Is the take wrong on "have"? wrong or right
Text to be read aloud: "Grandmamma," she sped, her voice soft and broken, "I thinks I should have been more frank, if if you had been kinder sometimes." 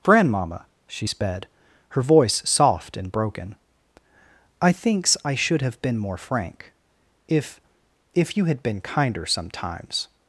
right